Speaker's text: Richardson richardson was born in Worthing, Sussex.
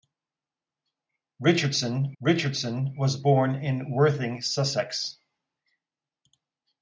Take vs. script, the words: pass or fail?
pass